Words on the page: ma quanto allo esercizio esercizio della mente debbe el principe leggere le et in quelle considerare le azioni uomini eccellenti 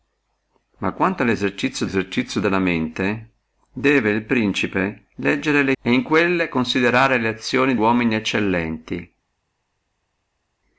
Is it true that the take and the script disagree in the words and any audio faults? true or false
false